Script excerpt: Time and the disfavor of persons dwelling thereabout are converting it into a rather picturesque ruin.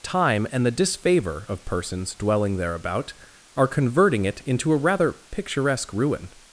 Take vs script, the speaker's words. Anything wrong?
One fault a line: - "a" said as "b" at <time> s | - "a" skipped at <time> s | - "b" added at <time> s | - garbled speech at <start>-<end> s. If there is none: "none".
none